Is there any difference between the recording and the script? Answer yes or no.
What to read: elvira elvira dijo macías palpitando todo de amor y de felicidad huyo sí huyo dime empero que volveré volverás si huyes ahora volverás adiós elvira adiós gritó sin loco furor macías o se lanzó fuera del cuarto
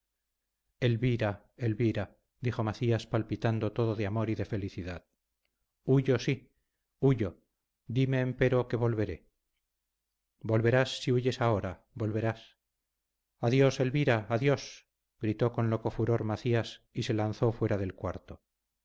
yes